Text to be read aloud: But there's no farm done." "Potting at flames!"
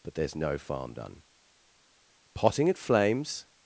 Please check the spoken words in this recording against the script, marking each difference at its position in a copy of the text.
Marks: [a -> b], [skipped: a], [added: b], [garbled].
But there's no farm done." "Potting at flames!"